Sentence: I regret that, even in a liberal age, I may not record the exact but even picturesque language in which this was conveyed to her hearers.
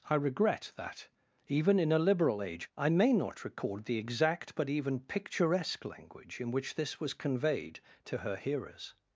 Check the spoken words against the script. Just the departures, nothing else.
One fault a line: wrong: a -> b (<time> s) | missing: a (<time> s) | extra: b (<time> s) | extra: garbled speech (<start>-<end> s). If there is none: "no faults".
no faults